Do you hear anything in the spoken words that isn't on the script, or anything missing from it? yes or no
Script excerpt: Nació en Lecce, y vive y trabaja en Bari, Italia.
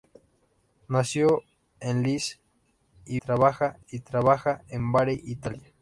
yes